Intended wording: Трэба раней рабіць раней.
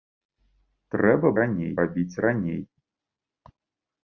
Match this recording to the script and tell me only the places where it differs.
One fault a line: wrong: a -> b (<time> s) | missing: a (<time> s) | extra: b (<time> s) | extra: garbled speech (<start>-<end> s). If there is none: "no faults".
no faults